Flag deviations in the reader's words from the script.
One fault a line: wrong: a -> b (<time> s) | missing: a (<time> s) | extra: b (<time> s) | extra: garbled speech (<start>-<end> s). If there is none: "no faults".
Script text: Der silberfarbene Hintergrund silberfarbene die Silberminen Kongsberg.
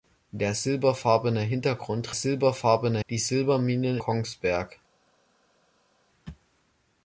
no faults